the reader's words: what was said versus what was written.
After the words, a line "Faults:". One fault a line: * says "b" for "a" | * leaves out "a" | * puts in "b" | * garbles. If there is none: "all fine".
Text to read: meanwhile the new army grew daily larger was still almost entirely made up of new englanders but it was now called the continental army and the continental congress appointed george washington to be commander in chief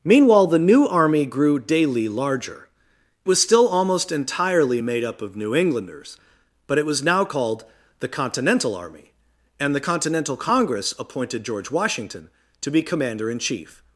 meanwhile the new army grew daily larger was still almost entirely made up of new englanders but it was now called the continental army and the continental congress appointed george washington to be commander in chief
Faults:
all fine